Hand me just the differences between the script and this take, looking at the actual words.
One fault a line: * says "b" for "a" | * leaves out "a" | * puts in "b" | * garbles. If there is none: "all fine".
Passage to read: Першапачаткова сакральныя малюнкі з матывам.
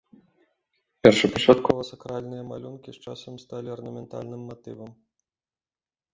* puts in "часам сталі арнаментальным"